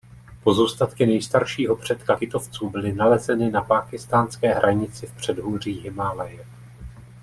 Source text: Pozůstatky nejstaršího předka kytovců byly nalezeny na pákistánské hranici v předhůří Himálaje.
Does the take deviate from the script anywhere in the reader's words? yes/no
no